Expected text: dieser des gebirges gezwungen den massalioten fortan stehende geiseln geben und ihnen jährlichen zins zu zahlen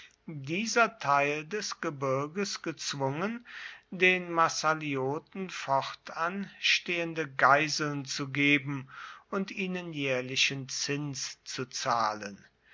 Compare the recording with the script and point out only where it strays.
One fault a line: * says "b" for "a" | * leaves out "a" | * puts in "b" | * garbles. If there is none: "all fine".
* puts in "teil"
* puts in "zu"